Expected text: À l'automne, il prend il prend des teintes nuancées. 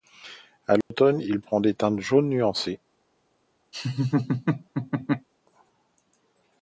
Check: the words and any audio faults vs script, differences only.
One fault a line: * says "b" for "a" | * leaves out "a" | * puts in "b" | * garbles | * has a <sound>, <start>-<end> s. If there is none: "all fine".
* has a dropout, 0.8-0.9 s
* leaves out "il prend"
* puts in "jaunes"
* has a laugh, 3.7-5.3 s